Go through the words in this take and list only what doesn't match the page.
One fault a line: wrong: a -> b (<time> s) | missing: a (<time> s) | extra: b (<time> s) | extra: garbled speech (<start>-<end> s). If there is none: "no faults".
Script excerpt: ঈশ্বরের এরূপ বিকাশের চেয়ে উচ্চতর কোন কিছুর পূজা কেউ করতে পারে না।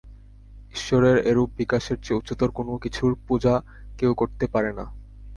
no faults